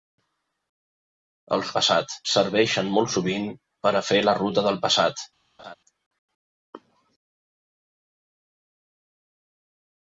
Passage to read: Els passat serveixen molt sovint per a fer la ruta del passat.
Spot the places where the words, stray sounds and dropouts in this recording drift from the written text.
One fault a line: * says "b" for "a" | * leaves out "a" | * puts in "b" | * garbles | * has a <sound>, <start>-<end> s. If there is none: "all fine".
* has a laugh, 5.6-5.7 s